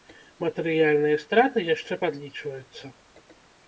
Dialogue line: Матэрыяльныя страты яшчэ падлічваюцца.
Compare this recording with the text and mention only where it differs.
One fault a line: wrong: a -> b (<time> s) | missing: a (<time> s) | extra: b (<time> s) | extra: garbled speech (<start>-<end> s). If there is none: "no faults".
no faults